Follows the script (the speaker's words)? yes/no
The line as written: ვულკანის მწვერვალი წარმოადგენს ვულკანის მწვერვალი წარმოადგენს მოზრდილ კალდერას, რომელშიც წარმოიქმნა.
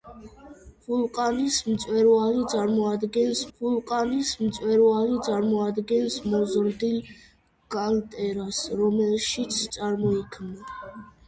yes